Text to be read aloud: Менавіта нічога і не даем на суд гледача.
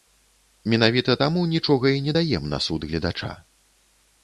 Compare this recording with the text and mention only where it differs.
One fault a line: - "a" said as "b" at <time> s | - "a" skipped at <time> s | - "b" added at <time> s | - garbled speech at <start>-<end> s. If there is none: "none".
- "таму" added at 1.2 s